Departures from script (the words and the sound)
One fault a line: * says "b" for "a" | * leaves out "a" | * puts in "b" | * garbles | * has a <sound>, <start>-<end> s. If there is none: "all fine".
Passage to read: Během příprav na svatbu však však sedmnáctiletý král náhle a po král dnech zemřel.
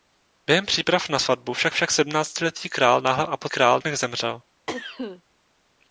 * has a cough, 4.7-5.2 s